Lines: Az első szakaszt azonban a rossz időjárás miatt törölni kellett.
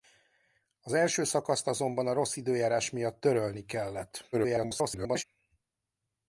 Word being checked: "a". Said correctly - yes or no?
yes